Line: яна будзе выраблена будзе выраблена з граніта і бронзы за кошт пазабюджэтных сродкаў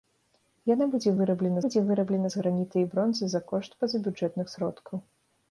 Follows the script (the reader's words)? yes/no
yes